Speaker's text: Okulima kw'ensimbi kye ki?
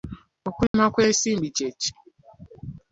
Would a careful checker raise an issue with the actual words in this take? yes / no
no